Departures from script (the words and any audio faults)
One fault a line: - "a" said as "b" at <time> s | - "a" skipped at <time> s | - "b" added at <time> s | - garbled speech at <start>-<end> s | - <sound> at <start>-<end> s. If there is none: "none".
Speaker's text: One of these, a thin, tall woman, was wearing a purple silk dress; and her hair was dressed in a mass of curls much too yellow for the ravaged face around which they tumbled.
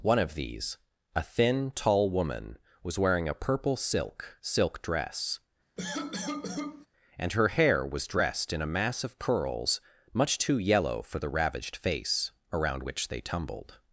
- "silk" added at 4.4 s
- cough at 5.8-6.9 s